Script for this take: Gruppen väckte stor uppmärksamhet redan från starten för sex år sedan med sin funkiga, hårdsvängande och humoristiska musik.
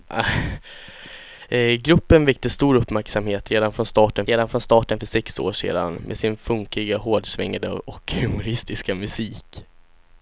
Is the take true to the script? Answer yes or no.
no